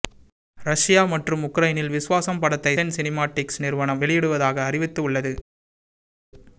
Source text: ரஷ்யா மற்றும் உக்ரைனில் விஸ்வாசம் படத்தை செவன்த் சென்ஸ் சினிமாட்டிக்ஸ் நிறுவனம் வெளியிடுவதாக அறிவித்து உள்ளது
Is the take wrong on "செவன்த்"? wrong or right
wrong